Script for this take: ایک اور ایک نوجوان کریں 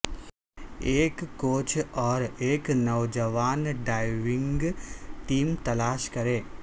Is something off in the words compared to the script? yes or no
yes